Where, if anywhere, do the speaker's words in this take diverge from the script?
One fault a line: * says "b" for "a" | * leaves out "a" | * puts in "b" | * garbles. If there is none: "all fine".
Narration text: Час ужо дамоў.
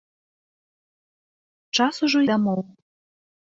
all fine